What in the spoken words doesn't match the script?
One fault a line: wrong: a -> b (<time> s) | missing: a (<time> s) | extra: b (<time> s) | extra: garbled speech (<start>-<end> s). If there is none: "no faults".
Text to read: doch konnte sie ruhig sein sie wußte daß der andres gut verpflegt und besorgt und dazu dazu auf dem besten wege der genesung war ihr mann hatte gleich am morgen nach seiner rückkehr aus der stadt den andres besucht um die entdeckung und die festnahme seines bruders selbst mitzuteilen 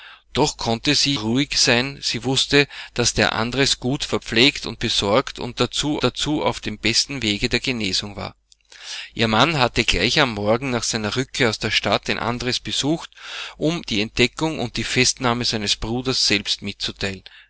no faults